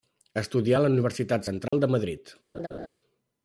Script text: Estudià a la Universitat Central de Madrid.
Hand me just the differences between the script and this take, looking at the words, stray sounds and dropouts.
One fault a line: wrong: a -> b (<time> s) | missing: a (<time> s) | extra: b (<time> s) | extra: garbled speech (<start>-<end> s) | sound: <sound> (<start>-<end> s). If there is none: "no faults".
sound: dropout (1.7-1.7 s)
sound: laugh (2.5-2.9 s)